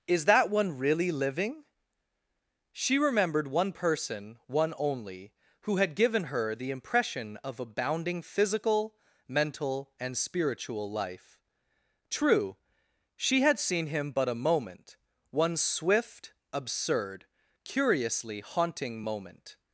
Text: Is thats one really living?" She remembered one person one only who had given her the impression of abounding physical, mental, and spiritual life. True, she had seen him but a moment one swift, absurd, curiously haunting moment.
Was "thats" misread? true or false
true